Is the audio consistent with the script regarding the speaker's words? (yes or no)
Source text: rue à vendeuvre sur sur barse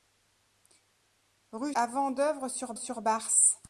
yes